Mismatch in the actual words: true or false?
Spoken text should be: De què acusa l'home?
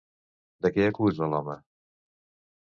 false